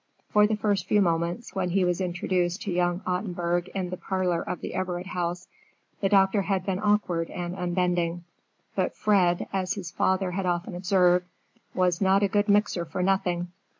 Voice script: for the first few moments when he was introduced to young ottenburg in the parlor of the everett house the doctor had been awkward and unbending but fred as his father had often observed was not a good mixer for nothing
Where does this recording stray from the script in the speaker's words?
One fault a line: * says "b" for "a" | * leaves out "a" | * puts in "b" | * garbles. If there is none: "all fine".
all fine